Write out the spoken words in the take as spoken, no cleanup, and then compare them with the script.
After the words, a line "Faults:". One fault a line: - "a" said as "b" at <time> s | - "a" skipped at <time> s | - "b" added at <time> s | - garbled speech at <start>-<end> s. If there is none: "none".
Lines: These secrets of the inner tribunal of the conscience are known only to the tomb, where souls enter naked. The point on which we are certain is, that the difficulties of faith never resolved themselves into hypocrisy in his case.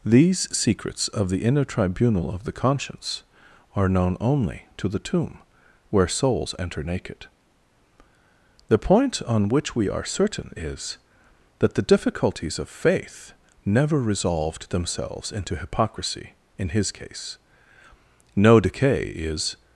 These secrets of the inner tribunal of the conscience are known only to the tomb, where souls enter naked. The point on which we are certain is, that the difficulties of faith never resolved themselves into hypocrisy in his case. No decay is
Faults:
- "No decay is" added at 18.4 s